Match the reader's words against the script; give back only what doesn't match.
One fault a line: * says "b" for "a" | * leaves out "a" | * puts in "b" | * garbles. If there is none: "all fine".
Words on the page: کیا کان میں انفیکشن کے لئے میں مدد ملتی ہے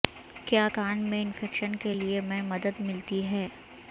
all fine